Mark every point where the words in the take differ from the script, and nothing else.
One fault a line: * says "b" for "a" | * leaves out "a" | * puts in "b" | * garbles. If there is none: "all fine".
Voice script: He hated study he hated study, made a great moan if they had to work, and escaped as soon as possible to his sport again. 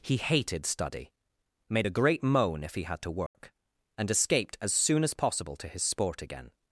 * leaves out "he hated study"
* says "he" for "they"